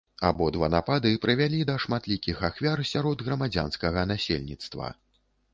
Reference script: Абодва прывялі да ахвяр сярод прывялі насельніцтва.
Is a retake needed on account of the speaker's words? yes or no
yes